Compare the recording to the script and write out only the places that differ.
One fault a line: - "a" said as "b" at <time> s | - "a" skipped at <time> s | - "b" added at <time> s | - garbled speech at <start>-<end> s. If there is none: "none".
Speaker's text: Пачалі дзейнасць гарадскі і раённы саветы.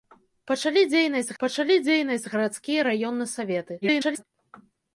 - "пачалі дзейнасць" added at 1.4 s
- garbled speech at 3.8-4.2 s